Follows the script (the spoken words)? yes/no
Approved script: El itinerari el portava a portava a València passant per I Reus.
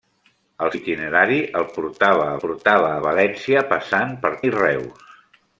yes